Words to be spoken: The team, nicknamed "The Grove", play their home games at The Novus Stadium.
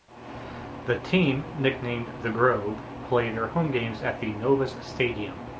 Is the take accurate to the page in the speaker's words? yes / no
yes